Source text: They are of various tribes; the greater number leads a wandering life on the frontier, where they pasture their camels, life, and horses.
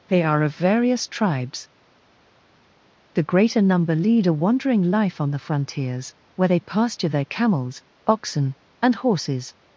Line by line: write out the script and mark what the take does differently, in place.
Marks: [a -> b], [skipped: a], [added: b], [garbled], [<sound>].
They are of various tribes; the greater number [leads -> lead] a wandering life on the [frontier, -> frontiers] where they pasture their camels, [life, -> oxen] and horses.